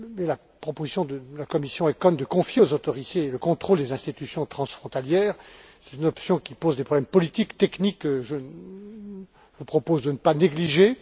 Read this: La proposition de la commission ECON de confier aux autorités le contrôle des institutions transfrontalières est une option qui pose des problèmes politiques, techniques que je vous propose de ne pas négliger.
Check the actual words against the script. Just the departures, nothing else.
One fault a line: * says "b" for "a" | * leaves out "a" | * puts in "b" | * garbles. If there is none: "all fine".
all fine